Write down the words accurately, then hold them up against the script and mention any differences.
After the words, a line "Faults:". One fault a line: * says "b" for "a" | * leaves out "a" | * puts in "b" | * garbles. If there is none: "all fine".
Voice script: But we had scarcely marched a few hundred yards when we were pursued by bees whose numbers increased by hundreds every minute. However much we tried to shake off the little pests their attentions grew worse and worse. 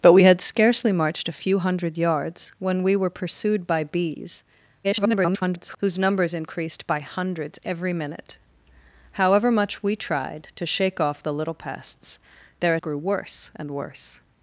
But we had scarcely marched a few hundred yards when we were pursued by bees [garbled] whose numbers increased by hundreds every minute. However much we tried to shake off the little pests their grew worse and worse.
Faults:
* garbles
* leaves out "attentions"